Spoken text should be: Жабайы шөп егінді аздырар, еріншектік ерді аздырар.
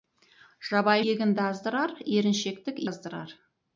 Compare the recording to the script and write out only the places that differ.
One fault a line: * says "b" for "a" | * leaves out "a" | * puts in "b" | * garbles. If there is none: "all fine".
* leaves out "шөп"
* leaves out "ерді"